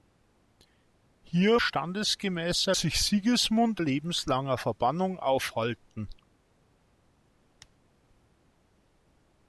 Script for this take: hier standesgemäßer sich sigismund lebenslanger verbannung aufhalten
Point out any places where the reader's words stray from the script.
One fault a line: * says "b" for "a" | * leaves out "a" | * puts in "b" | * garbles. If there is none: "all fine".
all fine